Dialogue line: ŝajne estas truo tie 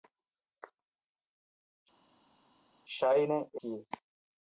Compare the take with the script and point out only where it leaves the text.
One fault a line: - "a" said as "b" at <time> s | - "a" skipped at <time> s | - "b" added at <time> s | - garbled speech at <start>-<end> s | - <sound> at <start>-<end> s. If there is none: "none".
- "estas truo" skipped at 3.4 s